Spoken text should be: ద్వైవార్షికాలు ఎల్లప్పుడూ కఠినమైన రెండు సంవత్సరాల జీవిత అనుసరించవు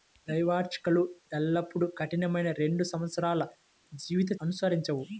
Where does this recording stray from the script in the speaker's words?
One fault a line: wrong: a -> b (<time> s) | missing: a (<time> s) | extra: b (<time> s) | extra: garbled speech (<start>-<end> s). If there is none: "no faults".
no faults